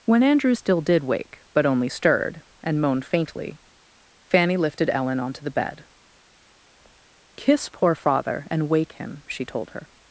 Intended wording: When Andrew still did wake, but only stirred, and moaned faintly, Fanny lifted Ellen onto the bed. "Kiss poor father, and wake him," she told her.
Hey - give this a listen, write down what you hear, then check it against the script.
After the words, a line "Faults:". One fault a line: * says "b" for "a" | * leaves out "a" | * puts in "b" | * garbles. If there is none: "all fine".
When Andrew still did wake, but only stirred, and moaned faintly, Fanny lifted Ellen onto the bed. "Kiss poor father, and wake him," she told her.
Faults:
all fine